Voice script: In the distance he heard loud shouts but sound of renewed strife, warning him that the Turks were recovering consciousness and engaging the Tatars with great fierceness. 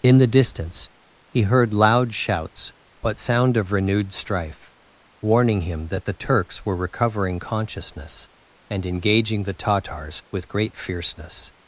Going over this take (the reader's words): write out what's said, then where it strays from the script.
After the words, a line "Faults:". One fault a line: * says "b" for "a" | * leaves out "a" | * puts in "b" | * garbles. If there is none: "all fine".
In the distance he heard loud shouts but sound of renewed strife, warning him that the Turks were recovering consciousness and engaging the Tatars with great fierceness.
Faults:
all fine